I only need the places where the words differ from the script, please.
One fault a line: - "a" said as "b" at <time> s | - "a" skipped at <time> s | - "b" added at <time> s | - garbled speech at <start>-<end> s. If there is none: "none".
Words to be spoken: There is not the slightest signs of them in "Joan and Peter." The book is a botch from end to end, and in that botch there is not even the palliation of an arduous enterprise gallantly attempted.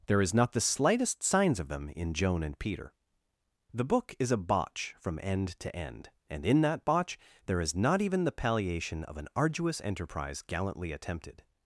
none